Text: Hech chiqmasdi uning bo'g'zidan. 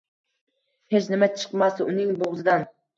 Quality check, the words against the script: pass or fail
fail